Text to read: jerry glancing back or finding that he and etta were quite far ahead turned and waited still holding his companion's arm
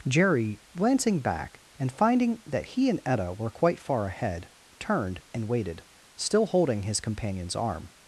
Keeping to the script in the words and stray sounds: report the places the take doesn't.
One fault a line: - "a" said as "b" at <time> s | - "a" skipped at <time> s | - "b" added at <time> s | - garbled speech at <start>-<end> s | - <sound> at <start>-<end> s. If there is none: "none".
- "or" said as "and" at 1.8 s